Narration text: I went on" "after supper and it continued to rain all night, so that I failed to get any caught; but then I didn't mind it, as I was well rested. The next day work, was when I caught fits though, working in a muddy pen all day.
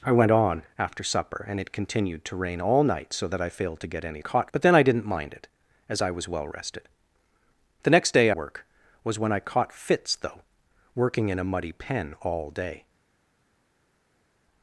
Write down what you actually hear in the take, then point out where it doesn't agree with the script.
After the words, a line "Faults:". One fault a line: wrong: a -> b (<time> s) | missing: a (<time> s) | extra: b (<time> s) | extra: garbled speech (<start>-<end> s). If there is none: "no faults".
I went on" "after supper and it continued to rain all night, so that I failed to get any caught; but then I didn't mind it, as I was well rested. The next day work, was when I caught fits though, working in a muddy pen all day.
Faults:
no faults